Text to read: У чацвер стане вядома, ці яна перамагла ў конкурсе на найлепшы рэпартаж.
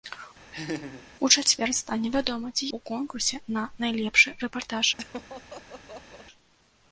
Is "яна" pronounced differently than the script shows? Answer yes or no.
yes